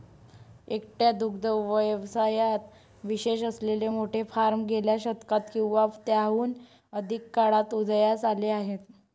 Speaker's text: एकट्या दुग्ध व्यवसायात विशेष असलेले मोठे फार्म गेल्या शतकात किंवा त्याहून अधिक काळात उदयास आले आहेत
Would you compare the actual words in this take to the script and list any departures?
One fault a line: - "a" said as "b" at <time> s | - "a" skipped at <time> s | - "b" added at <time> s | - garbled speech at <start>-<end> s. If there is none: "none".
none